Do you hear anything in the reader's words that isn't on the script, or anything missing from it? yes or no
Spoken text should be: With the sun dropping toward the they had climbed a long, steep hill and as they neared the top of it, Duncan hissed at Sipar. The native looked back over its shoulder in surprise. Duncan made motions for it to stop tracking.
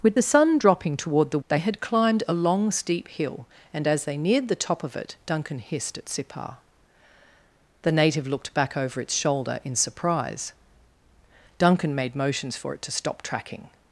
no